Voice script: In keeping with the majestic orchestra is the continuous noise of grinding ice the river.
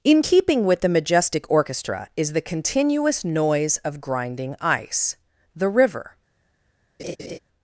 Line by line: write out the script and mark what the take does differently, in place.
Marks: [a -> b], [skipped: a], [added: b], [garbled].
In keeping with the majestic orchestra is the continuous noise of grinding ice the river.